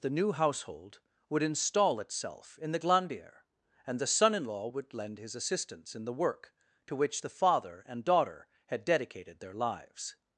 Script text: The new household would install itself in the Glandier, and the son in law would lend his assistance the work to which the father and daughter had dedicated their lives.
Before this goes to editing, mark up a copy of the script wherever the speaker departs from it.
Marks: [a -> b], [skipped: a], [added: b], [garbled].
The new household would install itself in the Glandier, and the son in law would lend his assistance [added: in] the work to which the father and daughter had dedicated their lives.